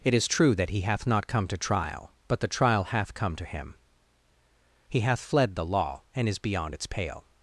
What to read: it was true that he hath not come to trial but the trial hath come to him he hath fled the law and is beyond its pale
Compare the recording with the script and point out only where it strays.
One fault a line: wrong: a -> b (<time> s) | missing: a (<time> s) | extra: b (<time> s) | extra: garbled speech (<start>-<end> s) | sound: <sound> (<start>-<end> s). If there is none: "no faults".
wrong: was -> is (0.1 s)